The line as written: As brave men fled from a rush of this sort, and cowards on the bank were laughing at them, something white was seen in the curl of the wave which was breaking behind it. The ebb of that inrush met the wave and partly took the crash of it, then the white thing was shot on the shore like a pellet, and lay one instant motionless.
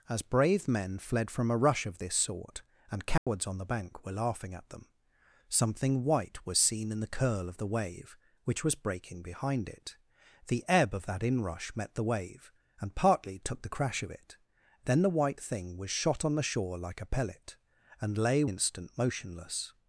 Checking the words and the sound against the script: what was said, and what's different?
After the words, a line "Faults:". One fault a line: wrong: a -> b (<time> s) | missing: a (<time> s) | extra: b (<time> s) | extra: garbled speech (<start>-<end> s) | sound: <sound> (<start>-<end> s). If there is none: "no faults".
As brave men fled from a rush of this sort, and cowards on the bank were laughing at them, something white was seen in the curl of the wave which was breaking behind it. The ebb of that inrush met the wave and partly took the crash of it, then the white thing was shot on the shore like a pellet, and lay instant motionless.
Faults:
sound: dropout (3.2-3.3 s)
missing: one (18.4 s)